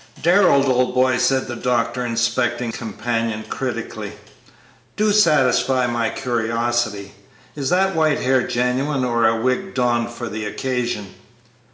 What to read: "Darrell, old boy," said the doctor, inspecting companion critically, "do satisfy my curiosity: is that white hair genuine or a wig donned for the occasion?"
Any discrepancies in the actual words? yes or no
no